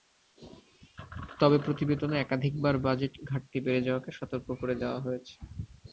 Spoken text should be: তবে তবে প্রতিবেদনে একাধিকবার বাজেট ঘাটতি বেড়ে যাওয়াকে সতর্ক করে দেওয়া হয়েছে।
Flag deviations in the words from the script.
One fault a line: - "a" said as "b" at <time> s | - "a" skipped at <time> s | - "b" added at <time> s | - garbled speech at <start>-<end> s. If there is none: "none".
- "তবে" skipped at 1.6 s